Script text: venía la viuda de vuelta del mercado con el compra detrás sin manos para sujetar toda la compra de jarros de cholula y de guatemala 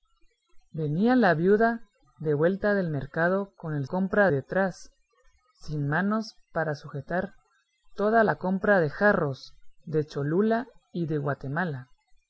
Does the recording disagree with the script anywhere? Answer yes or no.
no